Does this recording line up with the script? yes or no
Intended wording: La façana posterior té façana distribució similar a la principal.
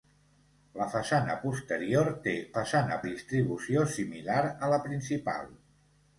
yes